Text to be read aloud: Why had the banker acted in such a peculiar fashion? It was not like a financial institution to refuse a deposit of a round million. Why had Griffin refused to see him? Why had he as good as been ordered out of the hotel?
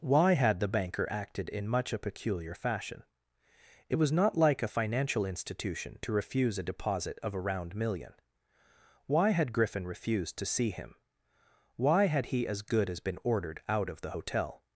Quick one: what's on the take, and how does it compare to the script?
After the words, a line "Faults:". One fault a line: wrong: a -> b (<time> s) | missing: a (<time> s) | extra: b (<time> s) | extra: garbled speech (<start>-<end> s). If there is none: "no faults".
Why had the banker acted in much a peculiar fashion? It was not like a financial institution to refuse a deposit of a round million. Why had Griffin refused to see him? Why had he as good as been ordered out of the hotel?
Faults:
wrong: such -> much (1.7 s)